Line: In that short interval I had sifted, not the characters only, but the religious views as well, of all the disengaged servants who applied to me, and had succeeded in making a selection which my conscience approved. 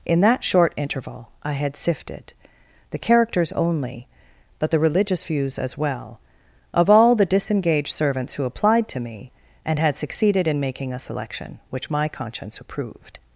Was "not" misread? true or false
true